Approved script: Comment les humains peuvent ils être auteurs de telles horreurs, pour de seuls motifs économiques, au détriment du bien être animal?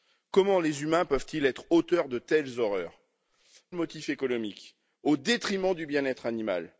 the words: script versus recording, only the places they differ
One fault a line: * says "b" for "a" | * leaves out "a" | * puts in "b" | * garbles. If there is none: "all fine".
* leaves out "pour de seuls"